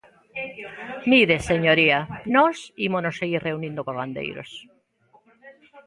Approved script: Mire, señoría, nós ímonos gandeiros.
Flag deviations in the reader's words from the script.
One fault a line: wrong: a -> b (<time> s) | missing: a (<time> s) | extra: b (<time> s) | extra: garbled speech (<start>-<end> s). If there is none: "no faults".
extra: seguir reunindo cos (3.2 s)